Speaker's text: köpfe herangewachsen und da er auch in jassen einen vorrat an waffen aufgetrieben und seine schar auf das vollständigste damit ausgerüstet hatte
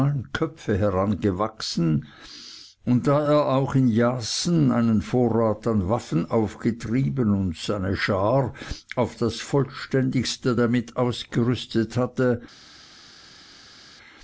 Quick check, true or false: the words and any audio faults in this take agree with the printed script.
true